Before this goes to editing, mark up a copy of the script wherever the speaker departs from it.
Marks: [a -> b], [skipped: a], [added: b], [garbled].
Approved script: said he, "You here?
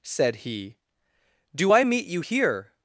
said he, [added: Do I meet] "You here?